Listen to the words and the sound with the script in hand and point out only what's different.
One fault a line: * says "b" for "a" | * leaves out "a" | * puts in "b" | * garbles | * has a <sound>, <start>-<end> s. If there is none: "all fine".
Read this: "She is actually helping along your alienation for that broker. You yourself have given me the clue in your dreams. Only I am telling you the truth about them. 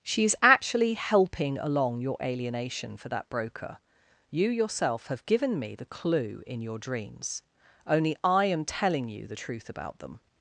all fine